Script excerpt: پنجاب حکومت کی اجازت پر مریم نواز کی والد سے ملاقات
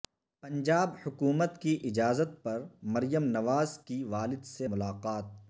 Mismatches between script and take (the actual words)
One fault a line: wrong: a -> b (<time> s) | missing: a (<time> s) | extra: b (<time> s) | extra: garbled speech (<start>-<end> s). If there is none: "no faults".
no faults